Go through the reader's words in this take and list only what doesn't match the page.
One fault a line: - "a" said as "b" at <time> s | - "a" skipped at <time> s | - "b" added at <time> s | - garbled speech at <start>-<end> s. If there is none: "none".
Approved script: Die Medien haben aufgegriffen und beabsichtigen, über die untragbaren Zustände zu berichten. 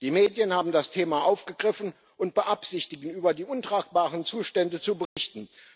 - "das Thema" added at 0.7 s